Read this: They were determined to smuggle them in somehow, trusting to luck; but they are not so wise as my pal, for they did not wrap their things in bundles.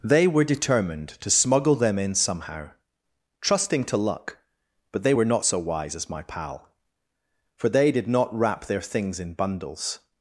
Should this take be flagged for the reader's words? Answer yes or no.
yes